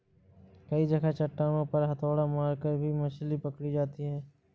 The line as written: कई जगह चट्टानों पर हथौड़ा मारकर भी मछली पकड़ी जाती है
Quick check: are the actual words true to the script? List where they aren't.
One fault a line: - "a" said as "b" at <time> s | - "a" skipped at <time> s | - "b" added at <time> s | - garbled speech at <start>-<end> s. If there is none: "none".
none